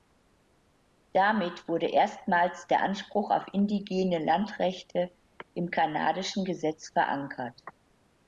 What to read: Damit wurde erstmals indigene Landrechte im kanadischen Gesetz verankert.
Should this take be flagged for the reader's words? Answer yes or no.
yes